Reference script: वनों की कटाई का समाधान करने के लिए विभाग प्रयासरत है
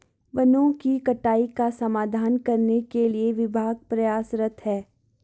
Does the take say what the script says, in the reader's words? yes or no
yes